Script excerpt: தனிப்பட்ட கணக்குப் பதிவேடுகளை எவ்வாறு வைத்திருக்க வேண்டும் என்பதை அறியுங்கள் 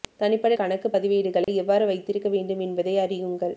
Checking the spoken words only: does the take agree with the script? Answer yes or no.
yes